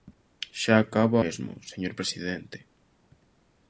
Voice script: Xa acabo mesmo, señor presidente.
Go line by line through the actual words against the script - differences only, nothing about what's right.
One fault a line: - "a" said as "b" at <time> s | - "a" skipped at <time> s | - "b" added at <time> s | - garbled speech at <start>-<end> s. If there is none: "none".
none